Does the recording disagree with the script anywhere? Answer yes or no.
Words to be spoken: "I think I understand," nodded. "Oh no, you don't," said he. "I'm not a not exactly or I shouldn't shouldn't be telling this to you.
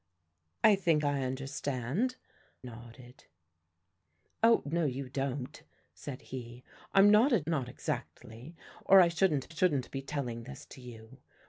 no